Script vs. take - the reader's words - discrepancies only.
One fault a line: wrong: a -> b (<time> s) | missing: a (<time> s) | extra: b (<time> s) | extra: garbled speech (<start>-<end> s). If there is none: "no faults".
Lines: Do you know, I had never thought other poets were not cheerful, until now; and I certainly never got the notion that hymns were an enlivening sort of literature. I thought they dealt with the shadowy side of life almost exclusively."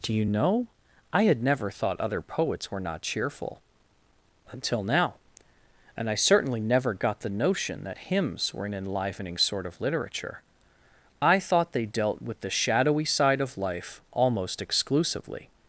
no faults